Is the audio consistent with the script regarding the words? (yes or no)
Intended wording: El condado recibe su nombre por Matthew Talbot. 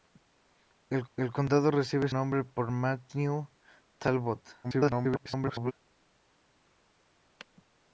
no